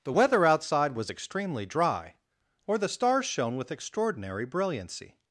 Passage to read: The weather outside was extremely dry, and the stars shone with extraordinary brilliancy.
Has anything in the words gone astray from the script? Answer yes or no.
yes